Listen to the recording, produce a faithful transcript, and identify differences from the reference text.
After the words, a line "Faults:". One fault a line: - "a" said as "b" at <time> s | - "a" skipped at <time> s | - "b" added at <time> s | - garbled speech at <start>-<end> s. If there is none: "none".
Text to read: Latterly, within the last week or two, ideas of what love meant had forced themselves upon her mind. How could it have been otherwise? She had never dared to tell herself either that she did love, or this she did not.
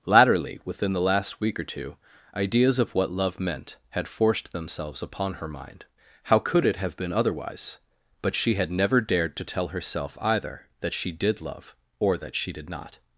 Latterly, within the last week or two, ideas of what love meant had forced themselves upon her mind. How could it have been otherwise? But she had never dared to tell herself either that she did love, or that she did not.
Faults:
- "But" added at 8.2 s
- "this" said as "that" at 12.2 s